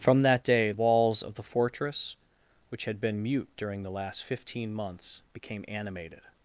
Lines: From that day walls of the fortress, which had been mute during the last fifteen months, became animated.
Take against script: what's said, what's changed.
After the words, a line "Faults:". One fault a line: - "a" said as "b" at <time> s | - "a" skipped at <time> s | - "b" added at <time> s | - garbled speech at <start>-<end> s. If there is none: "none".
From that day walls of the fortress, which had been mute during the last fifteen months, became animated.
Faults:
none